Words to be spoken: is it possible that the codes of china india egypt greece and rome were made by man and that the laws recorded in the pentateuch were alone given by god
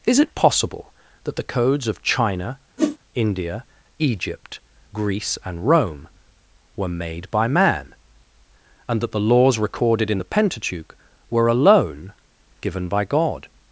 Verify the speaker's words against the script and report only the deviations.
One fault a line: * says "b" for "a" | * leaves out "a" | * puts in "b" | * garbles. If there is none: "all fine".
all fine